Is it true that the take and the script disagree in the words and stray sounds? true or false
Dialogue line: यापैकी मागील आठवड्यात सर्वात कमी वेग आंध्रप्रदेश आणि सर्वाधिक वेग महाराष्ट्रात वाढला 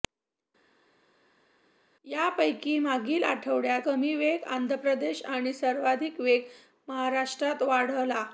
true